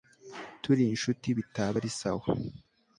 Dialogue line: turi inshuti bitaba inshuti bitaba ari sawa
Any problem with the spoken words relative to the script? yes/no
yes